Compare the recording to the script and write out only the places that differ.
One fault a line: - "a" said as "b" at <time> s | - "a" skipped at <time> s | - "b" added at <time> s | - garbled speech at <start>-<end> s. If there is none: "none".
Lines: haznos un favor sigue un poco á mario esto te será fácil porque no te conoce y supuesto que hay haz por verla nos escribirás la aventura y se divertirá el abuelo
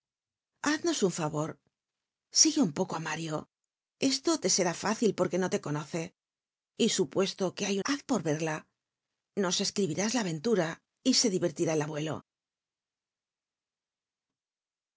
none